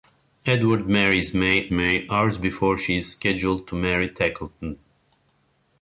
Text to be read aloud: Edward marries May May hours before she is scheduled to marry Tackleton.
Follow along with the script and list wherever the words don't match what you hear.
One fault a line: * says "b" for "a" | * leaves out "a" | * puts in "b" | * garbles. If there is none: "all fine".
all fine